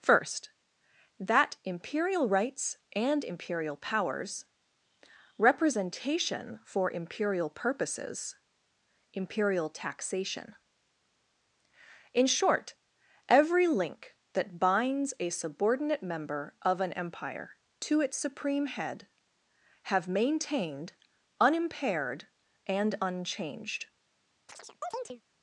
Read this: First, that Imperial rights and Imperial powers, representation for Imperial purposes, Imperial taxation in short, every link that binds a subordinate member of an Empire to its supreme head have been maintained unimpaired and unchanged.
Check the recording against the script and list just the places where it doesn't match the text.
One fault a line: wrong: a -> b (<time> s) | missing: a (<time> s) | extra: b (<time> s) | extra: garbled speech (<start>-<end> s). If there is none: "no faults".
missing: been (20.1 s)